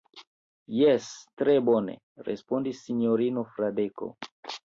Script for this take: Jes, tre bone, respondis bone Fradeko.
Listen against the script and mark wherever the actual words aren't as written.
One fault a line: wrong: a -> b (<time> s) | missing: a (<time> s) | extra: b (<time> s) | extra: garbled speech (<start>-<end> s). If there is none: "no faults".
wrong: bone -> sinjorino (2.9 s)